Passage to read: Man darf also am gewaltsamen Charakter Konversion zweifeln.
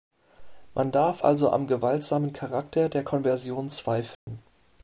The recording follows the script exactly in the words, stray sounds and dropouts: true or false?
false